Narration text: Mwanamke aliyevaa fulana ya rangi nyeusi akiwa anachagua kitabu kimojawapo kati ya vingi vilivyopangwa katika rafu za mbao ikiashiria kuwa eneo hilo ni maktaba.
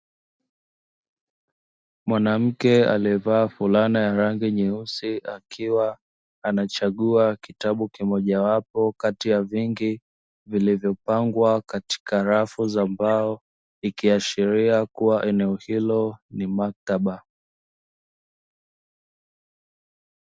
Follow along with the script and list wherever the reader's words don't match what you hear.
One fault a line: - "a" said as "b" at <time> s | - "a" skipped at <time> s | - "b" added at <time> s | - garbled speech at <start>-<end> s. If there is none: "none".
none